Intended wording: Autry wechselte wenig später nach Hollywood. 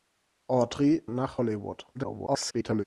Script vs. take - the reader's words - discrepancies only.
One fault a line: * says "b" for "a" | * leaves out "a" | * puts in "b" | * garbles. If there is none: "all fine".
* leaves out "wechselte wenig später"
* garbles